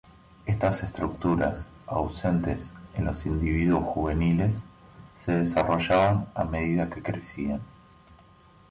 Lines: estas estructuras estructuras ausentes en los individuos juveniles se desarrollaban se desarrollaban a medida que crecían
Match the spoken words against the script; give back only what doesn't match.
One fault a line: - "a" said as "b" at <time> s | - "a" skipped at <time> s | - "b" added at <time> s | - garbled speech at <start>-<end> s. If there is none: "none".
- "estructuras" skipped at 1.7 s
- "se desarrollaban" skipped at 6.2 s